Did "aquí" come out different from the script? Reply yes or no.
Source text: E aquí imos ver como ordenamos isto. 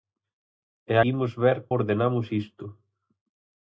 yes